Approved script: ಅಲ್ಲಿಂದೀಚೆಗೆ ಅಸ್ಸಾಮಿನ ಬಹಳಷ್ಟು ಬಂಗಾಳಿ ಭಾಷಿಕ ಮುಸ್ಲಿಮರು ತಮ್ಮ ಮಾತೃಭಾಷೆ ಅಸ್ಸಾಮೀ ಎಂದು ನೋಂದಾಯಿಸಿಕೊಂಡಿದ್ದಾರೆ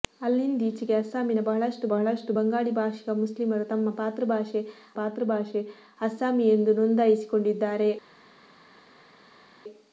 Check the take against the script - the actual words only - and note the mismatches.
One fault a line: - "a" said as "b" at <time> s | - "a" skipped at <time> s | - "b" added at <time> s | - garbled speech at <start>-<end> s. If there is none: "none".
- "ಬಹಳಷ್ಟು" added at 1.9 s
- "ಮಾತೃಭಾಷೆ" added at 5.0 s